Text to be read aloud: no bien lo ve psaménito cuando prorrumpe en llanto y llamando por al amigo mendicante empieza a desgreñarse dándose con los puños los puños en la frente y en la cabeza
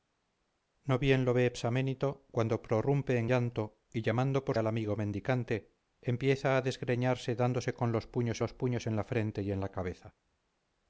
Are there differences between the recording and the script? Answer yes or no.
no